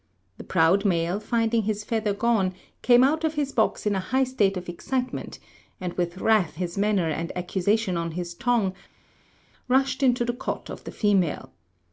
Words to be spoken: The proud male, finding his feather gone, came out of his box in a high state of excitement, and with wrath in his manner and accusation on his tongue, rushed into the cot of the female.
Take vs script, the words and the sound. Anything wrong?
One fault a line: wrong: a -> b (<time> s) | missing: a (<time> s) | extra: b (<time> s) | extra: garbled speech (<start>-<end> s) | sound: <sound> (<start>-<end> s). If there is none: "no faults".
missing: in (6.6 s)